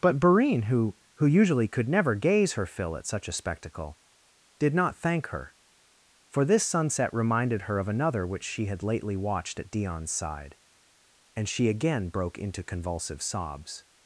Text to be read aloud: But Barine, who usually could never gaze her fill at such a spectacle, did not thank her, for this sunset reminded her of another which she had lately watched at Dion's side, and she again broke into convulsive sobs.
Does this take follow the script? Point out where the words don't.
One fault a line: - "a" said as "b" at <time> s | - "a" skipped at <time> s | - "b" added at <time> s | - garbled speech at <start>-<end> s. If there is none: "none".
- "who" added at 1.1 s